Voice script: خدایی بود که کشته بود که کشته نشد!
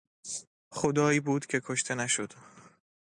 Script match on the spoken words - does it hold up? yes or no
no